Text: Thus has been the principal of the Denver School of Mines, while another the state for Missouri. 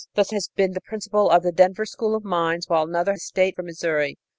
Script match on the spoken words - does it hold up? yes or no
yes